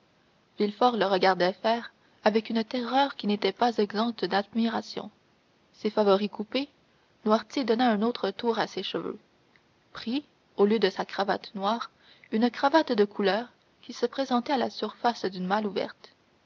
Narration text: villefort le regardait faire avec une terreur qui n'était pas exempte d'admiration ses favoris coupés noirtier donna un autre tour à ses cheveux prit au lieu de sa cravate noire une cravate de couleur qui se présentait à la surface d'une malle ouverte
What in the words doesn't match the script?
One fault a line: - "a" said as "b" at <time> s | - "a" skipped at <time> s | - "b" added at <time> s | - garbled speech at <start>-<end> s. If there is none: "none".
none